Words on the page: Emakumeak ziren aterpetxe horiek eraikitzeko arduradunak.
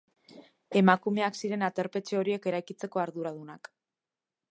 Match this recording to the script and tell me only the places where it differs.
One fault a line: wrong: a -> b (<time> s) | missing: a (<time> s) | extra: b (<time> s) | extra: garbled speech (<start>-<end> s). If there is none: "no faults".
no faults